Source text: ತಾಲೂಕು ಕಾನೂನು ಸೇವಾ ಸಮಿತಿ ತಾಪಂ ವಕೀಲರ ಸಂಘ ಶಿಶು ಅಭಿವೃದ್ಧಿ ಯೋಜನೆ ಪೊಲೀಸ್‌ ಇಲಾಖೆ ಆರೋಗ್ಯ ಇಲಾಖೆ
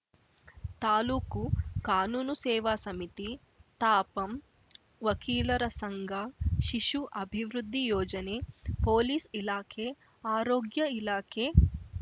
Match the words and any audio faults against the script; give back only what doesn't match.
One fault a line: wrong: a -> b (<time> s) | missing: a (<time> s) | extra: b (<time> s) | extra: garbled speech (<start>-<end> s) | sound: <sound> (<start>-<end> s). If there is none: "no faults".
no faults